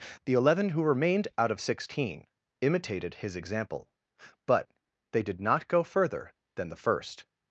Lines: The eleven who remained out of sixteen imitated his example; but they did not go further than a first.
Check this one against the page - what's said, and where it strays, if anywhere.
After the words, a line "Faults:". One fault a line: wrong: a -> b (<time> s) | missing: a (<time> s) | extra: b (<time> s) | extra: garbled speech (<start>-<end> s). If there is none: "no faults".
The eleven who remained out of sixteen imitated his example; but they did not go further than the first.
Faults:
wrong: a -> the (6.7 s)